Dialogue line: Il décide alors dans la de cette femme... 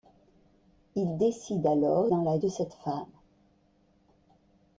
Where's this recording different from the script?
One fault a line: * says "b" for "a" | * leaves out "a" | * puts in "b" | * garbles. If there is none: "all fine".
all fine